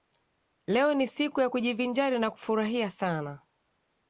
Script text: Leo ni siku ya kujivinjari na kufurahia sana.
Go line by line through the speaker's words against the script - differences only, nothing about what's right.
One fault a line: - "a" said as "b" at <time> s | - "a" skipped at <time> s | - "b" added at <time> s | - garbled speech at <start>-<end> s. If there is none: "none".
none